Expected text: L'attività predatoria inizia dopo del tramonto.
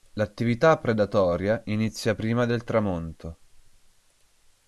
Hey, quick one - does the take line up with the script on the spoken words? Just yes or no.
no